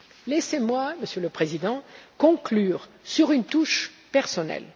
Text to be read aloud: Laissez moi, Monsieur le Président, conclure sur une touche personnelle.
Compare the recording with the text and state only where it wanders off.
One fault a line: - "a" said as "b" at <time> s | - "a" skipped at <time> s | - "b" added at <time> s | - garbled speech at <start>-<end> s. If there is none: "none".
none